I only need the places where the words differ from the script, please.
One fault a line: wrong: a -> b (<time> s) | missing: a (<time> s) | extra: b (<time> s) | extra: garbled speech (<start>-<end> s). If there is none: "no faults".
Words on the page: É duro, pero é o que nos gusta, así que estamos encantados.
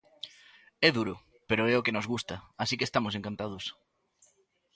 no faults